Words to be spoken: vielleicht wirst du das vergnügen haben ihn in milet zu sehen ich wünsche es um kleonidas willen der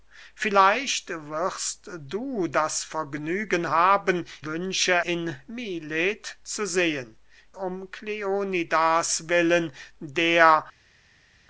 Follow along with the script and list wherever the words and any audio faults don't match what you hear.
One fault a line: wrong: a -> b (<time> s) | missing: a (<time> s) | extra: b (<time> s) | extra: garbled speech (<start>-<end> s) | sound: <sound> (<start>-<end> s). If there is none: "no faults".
wrong: ihn -> wünsche (4.4 s)
missing: ich wünsche es (7.2 s)